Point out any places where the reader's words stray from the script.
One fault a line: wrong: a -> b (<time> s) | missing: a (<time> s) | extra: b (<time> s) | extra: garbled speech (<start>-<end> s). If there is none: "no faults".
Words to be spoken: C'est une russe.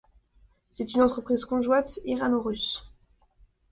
extra: entreprise conjointe irano (1.0 s)